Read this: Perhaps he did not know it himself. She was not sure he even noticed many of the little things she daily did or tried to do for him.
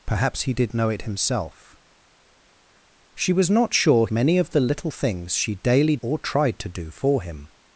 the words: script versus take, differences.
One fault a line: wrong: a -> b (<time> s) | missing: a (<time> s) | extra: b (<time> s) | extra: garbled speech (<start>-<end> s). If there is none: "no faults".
missing: not (0.7 s)
missing: he even noticed (4.1 s)
missing: did (6.0 s)